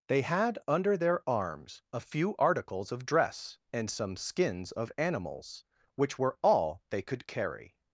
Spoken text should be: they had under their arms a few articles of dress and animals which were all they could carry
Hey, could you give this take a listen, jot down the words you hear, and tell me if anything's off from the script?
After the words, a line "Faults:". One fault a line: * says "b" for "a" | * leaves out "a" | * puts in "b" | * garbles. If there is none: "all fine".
they had under their arms a few articles of dress and some skins of animals which were all they could carry
Faults:
* puts in "some skins of"